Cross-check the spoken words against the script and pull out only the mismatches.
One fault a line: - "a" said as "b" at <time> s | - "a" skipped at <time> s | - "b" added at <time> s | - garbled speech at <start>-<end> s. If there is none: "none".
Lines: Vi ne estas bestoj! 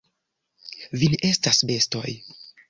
none